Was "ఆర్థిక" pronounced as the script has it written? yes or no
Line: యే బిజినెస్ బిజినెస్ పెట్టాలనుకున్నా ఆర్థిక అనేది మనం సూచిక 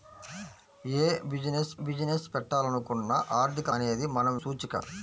yes